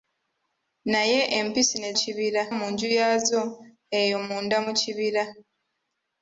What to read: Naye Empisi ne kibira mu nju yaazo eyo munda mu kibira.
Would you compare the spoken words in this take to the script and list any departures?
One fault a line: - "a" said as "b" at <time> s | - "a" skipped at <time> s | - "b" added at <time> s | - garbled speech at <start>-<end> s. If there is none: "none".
none